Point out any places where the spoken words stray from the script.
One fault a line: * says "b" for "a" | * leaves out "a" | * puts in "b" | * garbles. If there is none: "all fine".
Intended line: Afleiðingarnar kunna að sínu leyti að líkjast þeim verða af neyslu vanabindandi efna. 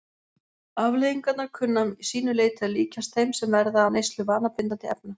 * puts in "sem"